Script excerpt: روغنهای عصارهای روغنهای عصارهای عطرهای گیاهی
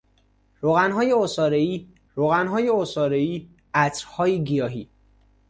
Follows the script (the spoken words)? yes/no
yes